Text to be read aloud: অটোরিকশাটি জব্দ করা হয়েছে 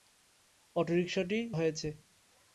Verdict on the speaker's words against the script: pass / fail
fail